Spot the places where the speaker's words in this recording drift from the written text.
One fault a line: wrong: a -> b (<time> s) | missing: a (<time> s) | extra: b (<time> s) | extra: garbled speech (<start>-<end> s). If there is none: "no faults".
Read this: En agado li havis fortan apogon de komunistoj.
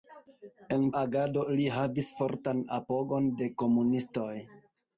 no faults